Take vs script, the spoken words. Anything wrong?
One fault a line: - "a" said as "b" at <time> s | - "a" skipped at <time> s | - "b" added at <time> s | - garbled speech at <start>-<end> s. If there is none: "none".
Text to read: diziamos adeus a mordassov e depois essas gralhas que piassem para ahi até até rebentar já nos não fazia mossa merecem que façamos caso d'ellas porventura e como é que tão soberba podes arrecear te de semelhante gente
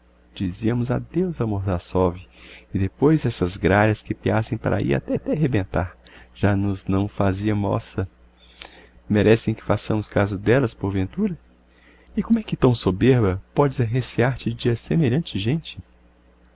none